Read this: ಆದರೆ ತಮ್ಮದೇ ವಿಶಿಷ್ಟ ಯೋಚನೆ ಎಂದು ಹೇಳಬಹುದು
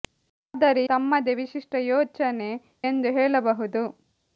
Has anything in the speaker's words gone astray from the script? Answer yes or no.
no